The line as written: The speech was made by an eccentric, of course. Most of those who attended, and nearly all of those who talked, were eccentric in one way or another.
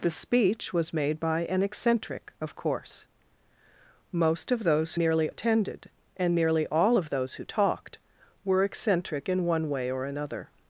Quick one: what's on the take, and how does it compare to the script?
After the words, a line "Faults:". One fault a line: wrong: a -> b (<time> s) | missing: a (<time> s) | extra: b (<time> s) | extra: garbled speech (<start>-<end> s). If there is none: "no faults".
The speech was made by an eccentric, of course. Most of those nearly attended, and nearly all of those who talked, were eccentric in one way or another.
Faults:
wrong: who -> nearly (5.0 s)